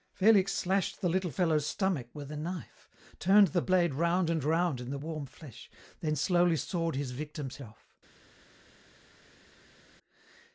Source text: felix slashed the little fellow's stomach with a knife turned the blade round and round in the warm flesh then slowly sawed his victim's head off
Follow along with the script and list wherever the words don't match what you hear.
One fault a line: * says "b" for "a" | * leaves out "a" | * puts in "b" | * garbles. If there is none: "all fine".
* leaves out "head"